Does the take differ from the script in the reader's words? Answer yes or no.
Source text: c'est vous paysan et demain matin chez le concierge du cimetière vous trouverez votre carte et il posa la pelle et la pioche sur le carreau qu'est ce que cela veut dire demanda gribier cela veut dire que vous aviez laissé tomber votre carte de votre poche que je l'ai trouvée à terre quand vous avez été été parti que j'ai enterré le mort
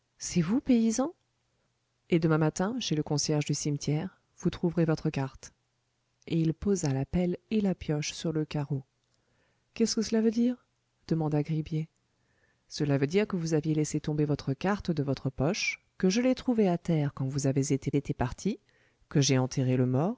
no